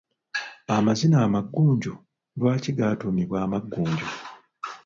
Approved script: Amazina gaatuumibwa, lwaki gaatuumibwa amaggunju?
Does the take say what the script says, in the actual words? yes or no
no